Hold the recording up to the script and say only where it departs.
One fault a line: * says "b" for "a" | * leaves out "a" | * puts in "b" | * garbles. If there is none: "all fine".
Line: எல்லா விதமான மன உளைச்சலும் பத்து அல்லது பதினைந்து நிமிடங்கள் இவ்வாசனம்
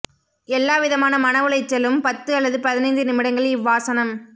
all fine